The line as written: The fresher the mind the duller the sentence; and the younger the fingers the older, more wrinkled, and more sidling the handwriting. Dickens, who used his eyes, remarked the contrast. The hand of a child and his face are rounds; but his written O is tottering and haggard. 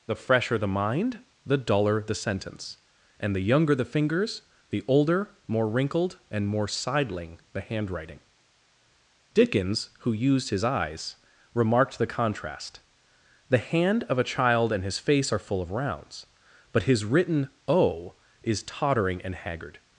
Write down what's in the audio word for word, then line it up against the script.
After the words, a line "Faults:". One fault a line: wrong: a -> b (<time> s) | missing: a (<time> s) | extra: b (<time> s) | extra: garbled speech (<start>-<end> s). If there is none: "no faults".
The fresher the mind the duller the sentence; and the younger the fingers the older, more wrinkled, and more sidling the handwriting. Dickens, who used his eyes, remarked the contrast. The hand of a child and his face are full of rounds; but his written O is tottering and haggard.
Faults:
extra: full of (15.4 s)